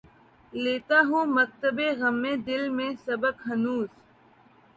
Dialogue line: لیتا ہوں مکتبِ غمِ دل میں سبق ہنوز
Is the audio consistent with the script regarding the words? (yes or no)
yes